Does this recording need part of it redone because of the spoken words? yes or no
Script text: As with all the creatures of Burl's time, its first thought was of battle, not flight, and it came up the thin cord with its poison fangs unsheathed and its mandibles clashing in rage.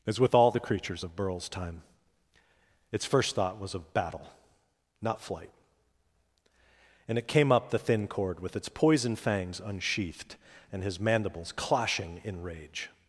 yes